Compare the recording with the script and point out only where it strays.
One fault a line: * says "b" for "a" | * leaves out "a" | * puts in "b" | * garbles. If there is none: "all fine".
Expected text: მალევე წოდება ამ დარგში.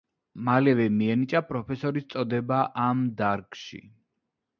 * puts in "მიენიჭა პროფესორის"